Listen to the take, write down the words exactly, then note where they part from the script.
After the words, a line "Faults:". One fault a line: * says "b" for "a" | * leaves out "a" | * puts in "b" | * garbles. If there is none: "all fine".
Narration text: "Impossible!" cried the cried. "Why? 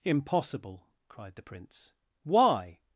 "Impossible!" cried the prince. "Why?
Faults:
* says "prince" for "cried"